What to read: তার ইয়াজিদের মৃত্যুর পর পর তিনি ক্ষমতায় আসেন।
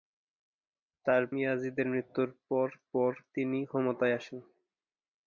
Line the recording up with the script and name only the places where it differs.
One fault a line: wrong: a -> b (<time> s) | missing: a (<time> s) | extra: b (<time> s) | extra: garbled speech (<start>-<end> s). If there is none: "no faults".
no faults